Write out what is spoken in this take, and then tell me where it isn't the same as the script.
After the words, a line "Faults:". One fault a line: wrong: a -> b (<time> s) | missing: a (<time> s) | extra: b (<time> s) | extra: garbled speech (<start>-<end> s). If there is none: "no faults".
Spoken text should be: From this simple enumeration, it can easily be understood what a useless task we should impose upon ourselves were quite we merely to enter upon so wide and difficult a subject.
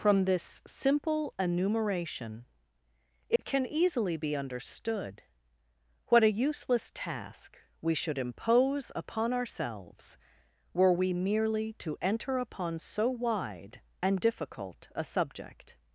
From this simple enumeration, it can easily be understood what a useless task we should impose upon ourselves were we merely to enter upon so wide and difficult a subject.
Faults:
missing: quite (10.9 s)